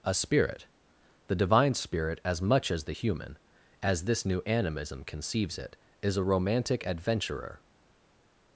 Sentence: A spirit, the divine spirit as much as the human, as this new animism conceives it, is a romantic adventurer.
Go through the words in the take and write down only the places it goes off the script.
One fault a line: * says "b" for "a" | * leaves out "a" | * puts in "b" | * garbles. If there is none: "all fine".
all fine